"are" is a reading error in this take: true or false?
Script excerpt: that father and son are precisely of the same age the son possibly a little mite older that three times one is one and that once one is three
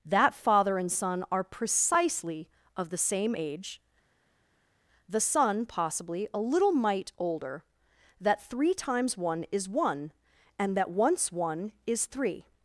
false